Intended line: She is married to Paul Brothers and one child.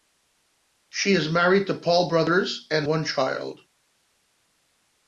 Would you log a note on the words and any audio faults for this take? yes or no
no